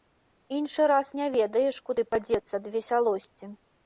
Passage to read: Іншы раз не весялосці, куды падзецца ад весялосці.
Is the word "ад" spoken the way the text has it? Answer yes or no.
yes